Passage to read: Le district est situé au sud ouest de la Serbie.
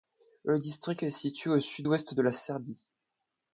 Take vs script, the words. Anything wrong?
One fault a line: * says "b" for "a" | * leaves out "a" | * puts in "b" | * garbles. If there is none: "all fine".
all fine